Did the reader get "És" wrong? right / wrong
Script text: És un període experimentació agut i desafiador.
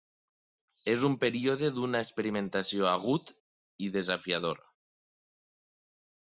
right